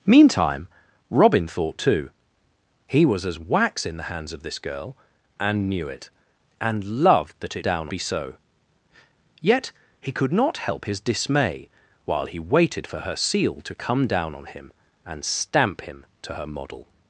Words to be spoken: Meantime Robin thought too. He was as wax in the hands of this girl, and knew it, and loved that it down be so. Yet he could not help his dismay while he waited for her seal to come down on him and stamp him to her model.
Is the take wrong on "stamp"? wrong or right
right